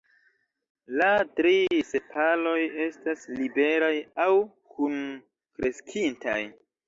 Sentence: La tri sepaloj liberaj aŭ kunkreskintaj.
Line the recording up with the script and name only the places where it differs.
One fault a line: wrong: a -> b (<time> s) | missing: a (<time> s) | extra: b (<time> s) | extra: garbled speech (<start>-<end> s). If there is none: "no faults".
extra: estas (2.9 s)